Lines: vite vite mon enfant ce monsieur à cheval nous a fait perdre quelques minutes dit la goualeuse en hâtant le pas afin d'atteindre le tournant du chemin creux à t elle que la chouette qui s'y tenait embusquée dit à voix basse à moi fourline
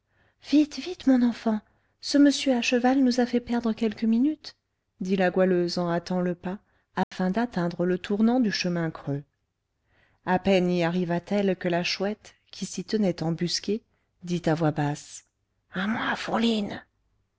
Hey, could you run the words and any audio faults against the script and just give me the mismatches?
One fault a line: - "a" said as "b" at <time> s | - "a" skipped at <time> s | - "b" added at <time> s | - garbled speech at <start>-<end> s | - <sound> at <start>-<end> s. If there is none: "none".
- dropout at 7.0-7.1 s
- "peine y arriva" added at 10.4 s